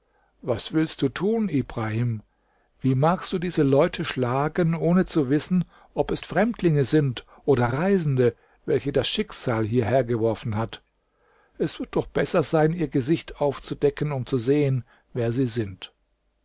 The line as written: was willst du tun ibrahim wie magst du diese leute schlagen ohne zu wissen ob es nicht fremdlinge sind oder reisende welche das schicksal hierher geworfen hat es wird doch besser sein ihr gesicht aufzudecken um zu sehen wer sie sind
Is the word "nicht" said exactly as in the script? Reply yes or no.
no